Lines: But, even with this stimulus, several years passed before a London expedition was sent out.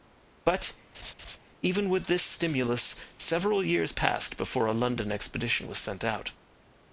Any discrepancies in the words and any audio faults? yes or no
yes